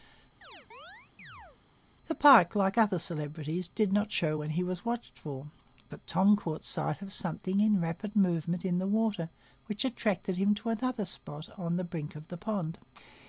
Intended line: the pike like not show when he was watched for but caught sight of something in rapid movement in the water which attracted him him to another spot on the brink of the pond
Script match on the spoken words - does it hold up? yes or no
no